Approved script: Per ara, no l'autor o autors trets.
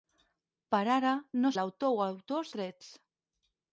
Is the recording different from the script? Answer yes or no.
no